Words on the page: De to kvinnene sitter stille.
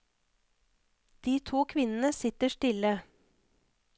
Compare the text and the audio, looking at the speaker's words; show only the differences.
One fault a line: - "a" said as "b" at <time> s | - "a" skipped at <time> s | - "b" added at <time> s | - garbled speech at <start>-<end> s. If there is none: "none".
none